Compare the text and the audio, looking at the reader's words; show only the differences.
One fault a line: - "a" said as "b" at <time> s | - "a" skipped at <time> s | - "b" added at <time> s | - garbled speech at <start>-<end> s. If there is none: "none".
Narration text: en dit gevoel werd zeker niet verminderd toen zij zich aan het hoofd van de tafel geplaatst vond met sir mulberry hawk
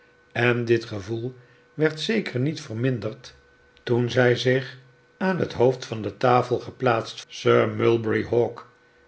- "vond met" skipped at 7.2 s